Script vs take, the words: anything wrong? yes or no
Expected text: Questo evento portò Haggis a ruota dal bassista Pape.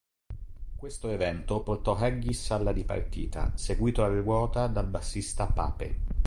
yes